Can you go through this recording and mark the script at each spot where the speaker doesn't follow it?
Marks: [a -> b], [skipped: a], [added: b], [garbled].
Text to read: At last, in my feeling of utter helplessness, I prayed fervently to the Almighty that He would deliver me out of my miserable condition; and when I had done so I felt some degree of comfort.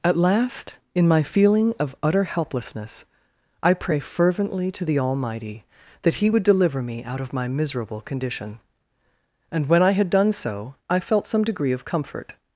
At last, in my feeling of utter helplessness, I [prayed -> pray] fervently to the Almighty that He would deliver me out of my miserable condition; and when I had done so I felt some degree of comfort.